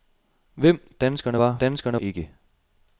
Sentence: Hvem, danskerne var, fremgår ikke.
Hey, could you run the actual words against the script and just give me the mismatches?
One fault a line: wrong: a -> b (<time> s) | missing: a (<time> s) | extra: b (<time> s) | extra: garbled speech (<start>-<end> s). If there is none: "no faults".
wrong: fremgår -> danskerne (1.6 s)